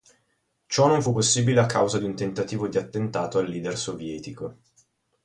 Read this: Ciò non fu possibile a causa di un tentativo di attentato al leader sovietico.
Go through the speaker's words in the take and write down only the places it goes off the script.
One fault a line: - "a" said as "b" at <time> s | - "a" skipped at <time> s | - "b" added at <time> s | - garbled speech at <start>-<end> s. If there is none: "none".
none